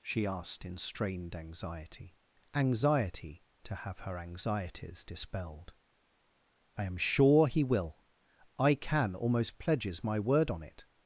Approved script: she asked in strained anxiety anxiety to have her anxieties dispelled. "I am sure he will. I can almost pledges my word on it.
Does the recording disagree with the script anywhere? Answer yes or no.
no